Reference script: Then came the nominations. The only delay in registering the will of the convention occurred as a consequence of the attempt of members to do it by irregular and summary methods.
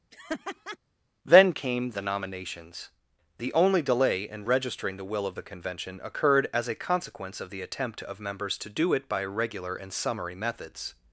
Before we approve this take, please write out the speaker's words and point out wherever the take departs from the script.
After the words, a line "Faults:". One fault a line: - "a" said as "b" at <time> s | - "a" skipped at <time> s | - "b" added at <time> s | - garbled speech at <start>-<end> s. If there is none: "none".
Then came the nominations. The only delay in registering the will of the convention occurred as a consequence of the attempt of members to do it by regular and summary methods.
Faults:
- "irregular" said as "regular" at 9.2 s